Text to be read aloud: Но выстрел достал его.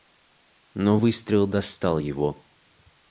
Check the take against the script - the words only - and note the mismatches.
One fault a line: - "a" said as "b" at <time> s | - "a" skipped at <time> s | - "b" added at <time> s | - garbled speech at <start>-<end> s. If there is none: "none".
none